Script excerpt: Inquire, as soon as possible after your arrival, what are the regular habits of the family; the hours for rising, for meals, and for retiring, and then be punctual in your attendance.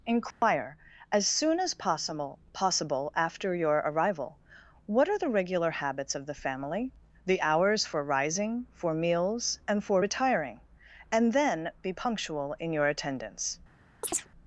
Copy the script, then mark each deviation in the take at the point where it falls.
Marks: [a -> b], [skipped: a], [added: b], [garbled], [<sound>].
Inquire, [dropout] as soon as possible [added: possible] after your arrival, what are the regular habits of the family; the hours for rising, for meals, and for retiring, and then be punctual in your attendance. [chirp]